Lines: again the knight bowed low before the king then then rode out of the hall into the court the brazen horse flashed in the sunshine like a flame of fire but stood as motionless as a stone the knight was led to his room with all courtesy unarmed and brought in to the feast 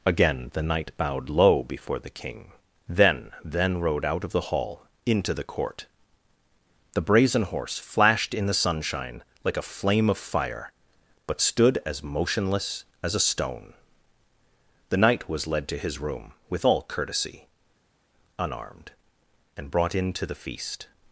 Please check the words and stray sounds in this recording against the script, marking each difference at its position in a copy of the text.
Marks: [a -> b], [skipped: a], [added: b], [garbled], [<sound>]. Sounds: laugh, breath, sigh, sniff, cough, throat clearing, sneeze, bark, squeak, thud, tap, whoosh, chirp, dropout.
again the knight bowed low before the king then then rode out of the hall into the court the brazen horse flashed in the sunshine like a flame of fire but stood as motionless as a stone the knight was led to his room with all courtesy unarmed and brought in to the feast